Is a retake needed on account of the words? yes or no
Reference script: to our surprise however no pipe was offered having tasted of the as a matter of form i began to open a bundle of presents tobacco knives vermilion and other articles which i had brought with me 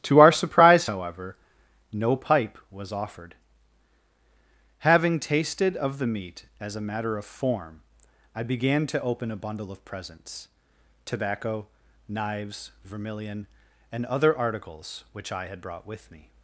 yes